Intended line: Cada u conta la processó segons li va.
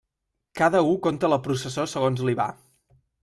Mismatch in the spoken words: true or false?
false